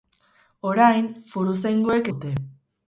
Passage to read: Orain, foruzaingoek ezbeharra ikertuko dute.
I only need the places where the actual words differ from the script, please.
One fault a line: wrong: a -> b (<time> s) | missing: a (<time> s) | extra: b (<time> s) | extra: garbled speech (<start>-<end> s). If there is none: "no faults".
missing: ezbeharra ikertuko (2.1 s)